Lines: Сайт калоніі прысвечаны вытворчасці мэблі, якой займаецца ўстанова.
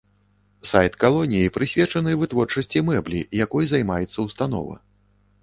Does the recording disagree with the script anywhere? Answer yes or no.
no